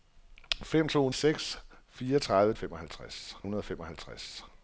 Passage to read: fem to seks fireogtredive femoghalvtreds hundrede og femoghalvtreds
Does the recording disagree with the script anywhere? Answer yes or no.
no